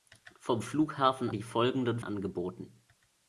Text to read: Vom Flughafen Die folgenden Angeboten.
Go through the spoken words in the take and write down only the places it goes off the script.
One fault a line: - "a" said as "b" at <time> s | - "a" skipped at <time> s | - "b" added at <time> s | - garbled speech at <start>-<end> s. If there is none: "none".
none